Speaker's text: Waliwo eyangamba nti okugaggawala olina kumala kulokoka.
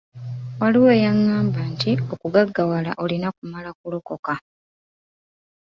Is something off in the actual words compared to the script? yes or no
no